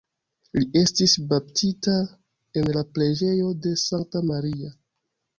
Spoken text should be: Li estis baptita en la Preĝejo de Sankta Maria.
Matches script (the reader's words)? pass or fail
pass